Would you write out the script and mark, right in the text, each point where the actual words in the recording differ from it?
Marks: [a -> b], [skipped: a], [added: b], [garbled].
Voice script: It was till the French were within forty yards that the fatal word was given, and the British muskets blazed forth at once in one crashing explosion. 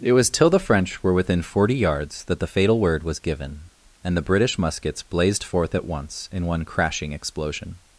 It was till the French were within forty yards that the fatal word was given, and the British muskets blazed forth at once in one crashing explosion.